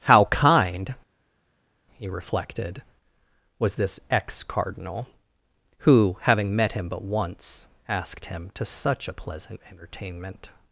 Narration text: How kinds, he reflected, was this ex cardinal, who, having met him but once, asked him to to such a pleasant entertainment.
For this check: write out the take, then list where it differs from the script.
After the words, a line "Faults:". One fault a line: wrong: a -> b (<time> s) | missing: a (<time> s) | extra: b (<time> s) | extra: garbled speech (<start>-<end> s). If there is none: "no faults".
How kind, he reflected, was this ex cardinal, who, having met him but once, asked him to such a pleasant entertainment.
Faults:
wrong: kinds -> kind (0.2 s)
missing: to (8.7 s)